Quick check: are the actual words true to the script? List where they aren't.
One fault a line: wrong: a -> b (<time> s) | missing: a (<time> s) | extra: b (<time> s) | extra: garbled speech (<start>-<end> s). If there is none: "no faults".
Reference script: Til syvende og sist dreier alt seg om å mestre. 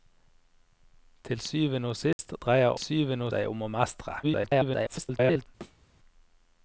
wrong: alt -> syvende (2.8 s)
extra: garbled speech (4.2-5.5 s)